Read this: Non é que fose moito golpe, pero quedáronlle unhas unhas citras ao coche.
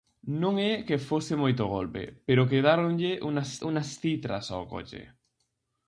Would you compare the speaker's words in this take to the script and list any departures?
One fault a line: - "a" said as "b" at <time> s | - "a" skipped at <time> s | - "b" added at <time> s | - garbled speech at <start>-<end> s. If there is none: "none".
none